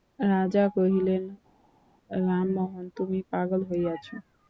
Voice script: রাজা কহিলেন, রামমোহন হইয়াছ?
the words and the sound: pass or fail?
fail